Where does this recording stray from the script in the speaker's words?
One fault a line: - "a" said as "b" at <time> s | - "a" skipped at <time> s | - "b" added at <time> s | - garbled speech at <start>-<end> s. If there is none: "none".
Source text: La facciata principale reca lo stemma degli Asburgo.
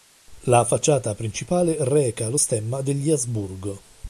none